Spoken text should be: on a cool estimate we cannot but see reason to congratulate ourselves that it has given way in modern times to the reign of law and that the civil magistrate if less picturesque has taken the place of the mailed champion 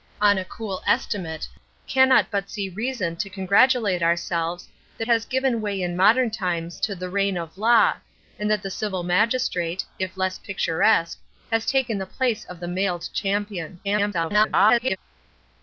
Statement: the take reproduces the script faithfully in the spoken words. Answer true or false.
false